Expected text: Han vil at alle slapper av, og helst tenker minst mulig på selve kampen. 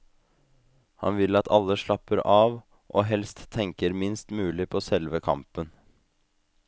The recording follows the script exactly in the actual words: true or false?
true